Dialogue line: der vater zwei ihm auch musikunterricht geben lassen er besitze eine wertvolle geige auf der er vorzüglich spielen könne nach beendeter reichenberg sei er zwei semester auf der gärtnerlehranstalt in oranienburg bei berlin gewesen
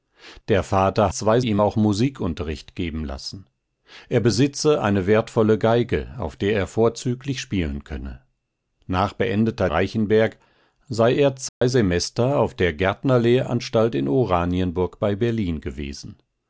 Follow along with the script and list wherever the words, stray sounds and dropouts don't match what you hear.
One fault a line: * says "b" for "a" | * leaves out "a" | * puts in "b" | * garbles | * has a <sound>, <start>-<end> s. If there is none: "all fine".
* has a dropout, 11.5-11.6 s